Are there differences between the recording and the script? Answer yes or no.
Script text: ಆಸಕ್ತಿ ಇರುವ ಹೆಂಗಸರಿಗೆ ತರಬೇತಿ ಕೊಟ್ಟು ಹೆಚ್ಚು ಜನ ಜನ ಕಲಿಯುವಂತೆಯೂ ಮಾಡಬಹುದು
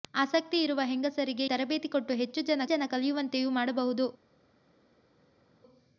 no